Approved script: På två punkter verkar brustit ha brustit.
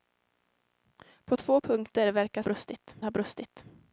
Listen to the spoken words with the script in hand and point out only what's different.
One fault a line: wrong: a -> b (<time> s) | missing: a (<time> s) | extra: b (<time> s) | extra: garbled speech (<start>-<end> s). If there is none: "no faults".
no faults